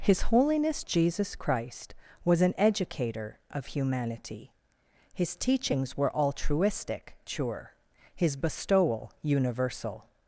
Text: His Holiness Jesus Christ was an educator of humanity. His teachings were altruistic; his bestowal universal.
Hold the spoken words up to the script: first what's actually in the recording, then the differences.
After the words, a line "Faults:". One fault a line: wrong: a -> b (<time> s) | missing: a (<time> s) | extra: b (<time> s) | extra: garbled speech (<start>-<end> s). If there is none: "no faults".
His Holiness Jesus Christ was an educator of humanity. His teachings were altruistic; sure his bestowal universal.
Faults:
extra: sure (7.3 s)